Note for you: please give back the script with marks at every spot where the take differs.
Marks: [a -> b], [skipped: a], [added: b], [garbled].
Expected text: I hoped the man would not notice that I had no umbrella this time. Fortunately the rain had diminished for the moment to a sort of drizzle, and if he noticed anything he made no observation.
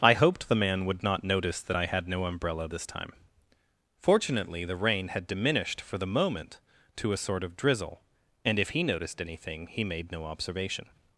I hoped the man would not notice that I had no umbrella this time. Fortunately the rain had diminished for the moment to a sort of drizzle, and if he noticed anything he made no observation.